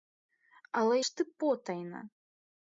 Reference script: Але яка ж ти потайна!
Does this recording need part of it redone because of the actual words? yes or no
yes